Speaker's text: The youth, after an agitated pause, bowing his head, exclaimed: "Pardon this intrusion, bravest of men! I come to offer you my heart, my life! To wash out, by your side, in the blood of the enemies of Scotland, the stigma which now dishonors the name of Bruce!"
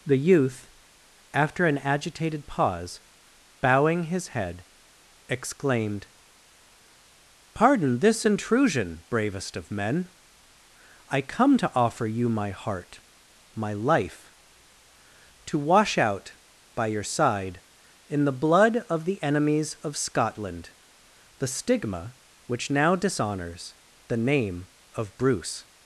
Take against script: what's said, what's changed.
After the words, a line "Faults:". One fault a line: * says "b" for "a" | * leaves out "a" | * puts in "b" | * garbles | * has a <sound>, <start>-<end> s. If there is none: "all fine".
The youth, after an agitated pause, bowing his head, exclaimed: "Pardon this intrusion, bravest of men! I come to offer you my heart, my life! To wash out, by your side, in the blood of the enemies of Scotland, the stigma which now dishonors the name of Bruce!"
Faults:
all fine